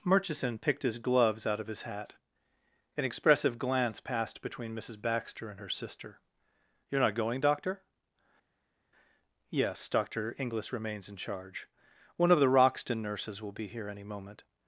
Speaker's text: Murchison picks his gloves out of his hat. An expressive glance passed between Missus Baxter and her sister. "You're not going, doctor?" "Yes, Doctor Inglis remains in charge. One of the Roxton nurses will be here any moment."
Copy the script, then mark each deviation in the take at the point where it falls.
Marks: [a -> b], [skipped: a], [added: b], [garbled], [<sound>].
Murchison [picks -> picked] his gloves out of his hat. An expressive glance passed between Missus Baxter and her sister. "You're not going, doctor?" "Yes, Doctor Inglis remains in charge. One of the Roxton nurses will be here any moment."